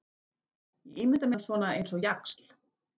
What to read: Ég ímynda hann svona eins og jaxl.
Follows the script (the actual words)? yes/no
yes